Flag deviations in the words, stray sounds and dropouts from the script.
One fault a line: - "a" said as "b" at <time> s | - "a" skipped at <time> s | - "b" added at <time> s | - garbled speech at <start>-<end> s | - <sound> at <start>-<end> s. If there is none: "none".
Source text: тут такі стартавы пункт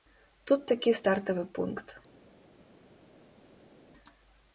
none